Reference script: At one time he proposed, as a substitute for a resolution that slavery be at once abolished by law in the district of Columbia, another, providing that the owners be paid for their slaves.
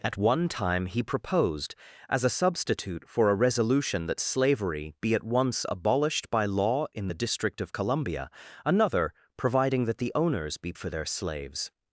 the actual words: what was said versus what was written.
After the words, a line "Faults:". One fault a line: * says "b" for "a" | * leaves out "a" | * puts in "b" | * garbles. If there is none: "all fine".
At one time he proposed, as a substitute for a resolution that slavery be at once abolished by law in the district of Columbia, another, providing that the owners be for their slaves.
Faults:
* leaves out "paid"